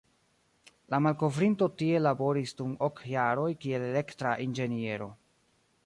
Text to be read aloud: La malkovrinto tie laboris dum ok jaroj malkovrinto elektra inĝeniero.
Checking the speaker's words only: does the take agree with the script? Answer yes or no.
no